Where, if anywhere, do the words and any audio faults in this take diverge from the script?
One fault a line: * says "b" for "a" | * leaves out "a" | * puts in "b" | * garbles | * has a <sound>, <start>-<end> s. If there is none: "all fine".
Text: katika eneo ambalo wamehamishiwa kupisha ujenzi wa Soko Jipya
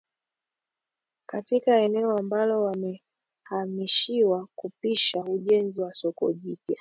all fine